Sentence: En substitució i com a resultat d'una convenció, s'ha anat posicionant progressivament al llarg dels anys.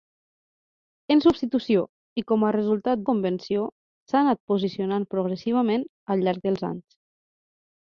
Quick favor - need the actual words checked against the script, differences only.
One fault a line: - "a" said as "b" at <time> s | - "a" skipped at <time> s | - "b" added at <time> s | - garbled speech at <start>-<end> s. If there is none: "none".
- "d'una" skipped at 3.0 s